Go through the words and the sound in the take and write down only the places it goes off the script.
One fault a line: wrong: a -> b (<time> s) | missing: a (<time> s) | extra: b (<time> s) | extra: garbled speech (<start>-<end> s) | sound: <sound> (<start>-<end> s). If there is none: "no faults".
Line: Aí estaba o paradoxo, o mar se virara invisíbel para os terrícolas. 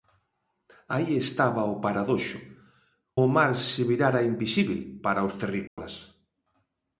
sound: dropout (5.7-5.8 s)